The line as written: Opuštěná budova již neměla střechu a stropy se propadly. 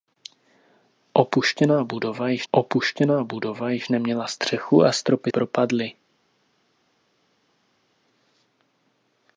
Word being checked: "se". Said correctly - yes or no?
no